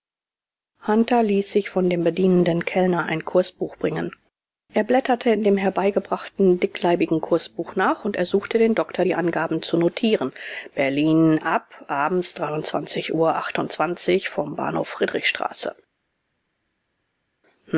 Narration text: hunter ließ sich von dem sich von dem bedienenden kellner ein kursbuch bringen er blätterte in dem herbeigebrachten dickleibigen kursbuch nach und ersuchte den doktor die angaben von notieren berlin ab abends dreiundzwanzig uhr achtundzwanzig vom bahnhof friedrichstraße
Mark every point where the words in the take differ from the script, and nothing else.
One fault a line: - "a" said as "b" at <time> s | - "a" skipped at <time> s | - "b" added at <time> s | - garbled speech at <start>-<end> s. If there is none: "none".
- "sich von dem" skipped at 2.0 s
- "von" said as "zu" at 9.6 s